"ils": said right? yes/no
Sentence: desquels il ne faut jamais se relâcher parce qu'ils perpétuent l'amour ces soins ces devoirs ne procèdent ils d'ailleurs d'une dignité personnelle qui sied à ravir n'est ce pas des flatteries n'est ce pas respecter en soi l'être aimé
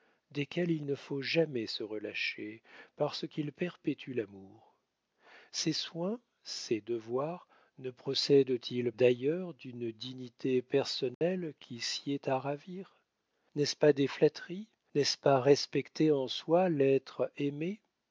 yes